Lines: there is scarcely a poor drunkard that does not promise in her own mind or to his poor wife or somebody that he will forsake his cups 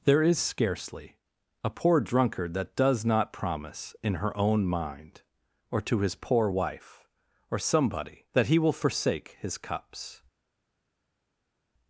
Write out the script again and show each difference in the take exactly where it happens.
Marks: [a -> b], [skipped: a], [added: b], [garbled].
there is scarcely a poor drunkard that does not promise in her own mind or to his poor wife or somebody that he will forsake his cups